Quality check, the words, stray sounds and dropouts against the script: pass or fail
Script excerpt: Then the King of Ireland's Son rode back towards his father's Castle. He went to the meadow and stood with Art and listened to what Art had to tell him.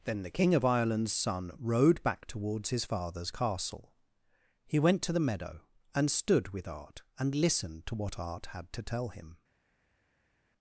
pass